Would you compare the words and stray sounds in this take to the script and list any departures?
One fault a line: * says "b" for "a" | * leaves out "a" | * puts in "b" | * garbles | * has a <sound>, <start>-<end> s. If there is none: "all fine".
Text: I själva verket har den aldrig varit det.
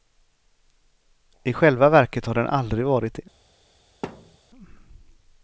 * has a thud, 4.0-4.4 s